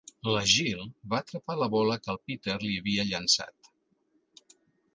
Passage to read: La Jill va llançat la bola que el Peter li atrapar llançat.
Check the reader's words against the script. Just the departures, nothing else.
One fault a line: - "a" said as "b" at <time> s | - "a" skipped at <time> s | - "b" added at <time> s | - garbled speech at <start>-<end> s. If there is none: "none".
- "llançat" said as "atrapar" at 1.2 s
- "atrapar" said as "havia" at 2.8 s